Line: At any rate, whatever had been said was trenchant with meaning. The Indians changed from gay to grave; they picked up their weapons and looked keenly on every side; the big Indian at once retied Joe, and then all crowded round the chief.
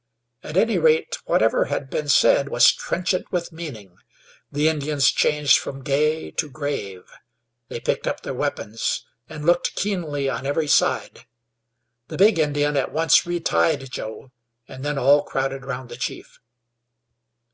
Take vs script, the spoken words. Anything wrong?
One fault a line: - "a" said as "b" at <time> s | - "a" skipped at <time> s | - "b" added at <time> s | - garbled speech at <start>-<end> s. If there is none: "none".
none